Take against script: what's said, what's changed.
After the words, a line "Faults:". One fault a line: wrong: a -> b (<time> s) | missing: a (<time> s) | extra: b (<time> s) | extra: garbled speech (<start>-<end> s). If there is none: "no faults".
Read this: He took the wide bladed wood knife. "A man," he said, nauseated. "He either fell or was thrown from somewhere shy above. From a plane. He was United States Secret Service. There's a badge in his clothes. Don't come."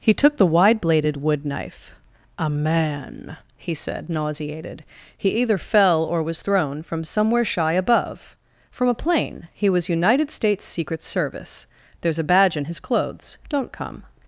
He took the wide bladed wood knife. "A man," he said, nauseated. "He either fell or was thrown from somewhere shy above. From a plane. He was United States Secret Service. There's a badge in his clothes. Don't come."
Faults:
no faults